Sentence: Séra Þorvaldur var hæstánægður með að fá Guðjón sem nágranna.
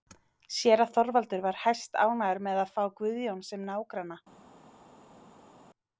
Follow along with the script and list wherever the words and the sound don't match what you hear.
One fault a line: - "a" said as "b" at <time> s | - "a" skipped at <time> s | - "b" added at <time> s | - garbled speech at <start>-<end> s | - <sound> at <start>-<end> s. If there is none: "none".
none